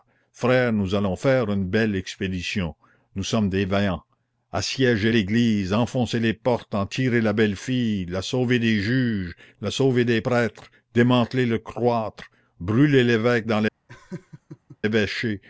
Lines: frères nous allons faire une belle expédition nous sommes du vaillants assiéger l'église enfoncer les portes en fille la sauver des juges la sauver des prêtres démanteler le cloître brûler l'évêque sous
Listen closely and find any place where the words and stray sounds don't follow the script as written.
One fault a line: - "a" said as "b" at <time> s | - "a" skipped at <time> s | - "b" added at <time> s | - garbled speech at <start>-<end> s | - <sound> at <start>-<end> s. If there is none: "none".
- "du" said as "des" at 3.5 s
- "tirer la belle" added at 6.8 s
- "sous" said as "dans" at 13.4 s
- laugh at 13.9-14.8 s